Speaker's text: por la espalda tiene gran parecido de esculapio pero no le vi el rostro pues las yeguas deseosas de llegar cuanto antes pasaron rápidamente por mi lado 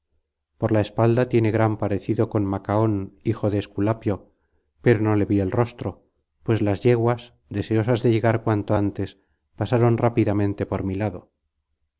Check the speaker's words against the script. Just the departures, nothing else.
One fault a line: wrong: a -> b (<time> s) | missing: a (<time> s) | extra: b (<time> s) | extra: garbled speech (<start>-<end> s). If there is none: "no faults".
extra: con macaón hijo (2.3 s)